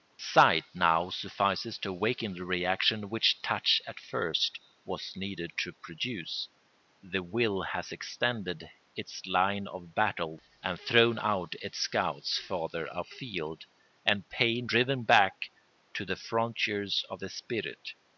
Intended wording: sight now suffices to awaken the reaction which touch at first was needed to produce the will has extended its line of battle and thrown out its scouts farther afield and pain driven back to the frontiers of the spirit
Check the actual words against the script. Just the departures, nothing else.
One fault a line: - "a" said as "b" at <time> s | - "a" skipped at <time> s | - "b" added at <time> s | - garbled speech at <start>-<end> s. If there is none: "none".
none